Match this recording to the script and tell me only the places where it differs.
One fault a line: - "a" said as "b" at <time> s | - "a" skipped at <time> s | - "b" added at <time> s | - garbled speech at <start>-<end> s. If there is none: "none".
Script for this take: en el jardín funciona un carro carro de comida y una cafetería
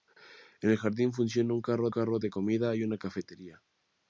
none